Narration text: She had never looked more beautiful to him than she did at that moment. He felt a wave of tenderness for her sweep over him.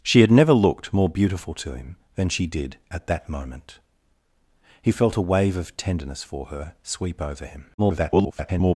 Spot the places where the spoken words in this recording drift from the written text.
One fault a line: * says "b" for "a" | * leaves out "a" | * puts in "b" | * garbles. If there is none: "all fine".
* garbles